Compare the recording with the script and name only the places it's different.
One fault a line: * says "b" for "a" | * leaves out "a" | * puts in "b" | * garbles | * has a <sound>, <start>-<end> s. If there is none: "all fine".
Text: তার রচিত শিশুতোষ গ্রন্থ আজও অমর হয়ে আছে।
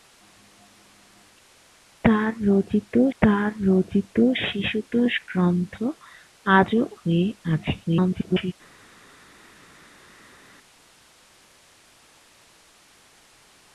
* puts in "তার রচিত"
* leaves out "অমর"
* garbles